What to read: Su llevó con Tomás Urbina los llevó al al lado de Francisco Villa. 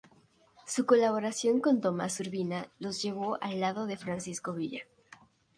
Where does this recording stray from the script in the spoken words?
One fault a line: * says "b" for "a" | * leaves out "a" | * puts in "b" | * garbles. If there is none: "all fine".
* says "colaboración" for "llevó"
* leaves out "al"